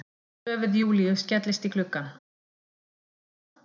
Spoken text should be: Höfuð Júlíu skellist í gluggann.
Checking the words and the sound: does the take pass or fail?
pass